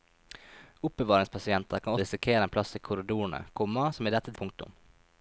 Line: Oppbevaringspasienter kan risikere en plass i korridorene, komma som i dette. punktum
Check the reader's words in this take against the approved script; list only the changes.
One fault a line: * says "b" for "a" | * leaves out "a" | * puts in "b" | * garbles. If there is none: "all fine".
all fine